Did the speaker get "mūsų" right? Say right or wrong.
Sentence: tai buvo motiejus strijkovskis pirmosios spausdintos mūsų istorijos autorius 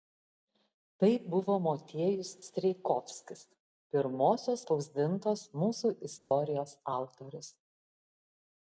right